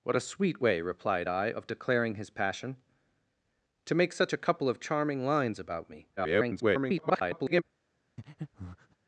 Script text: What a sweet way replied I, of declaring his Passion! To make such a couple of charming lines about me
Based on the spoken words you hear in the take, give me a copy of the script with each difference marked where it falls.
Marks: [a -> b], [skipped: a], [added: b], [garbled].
What a sweet way replied I, of declaring his Passion! To make such a couple of charming lines about me [garbled]